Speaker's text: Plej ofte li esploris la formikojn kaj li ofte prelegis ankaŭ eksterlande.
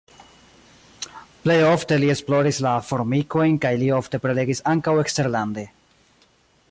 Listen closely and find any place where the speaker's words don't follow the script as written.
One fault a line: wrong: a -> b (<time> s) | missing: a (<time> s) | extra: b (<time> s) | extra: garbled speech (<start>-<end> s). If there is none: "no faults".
no faults